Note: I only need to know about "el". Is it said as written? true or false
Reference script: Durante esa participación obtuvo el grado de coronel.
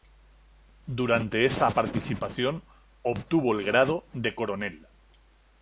true